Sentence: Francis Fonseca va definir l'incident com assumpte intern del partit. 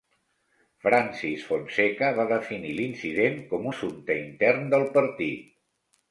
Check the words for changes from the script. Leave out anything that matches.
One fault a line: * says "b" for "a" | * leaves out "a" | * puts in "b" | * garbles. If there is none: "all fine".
all fine